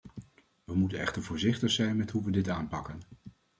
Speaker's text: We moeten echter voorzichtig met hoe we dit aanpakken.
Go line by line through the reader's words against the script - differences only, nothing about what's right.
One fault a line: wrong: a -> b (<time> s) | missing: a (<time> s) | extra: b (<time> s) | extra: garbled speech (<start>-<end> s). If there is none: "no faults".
extra: zijn (1.7 s)